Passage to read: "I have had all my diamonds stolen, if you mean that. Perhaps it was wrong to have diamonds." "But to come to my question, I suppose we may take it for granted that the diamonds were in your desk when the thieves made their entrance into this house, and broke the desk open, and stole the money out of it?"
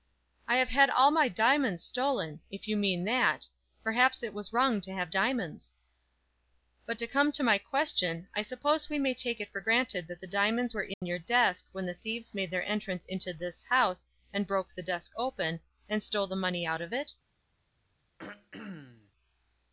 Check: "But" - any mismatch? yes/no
no